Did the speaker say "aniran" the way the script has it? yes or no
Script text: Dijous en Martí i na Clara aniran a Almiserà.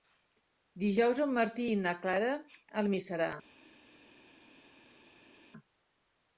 no